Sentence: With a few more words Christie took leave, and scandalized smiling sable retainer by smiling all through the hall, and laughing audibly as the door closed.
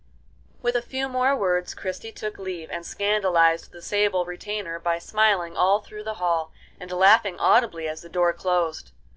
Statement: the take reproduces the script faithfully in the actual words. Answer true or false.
false